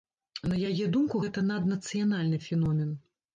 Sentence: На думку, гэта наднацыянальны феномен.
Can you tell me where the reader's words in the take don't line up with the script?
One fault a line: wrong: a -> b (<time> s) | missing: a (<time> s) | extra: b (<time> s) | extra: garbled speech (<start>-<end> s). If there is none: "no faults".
extra: яе (0.7 s)